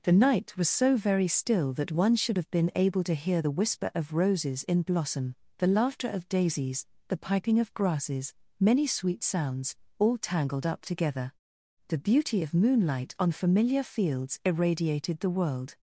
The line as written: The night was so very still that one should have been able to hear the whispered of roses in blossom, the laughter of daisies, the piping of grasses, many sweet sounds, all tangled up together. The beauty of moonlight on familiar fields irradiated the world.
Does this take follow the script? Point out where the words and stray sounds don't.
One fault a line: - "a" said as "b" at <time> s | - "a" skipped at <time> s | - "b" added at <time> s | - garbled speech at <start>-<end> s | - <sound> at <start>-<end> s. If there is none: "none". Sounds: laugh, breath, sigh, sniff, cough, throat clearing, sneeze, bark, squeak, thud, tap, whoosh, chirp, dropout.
- "whispered" said as "whisper" at 3.6 s